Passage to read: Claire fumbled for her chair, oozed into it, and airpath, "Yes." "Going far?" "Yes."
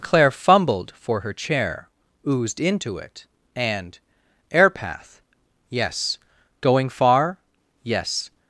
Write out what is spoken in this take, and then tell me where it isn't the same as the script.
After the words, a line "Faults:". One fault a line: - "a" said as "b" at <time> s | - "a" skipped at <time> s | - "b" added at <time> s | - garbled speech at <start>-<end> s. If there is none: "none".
Claire fumbled for her chair, oozed into it, and airpath, "Yes." "Going far?" "Yes."
Faults:
none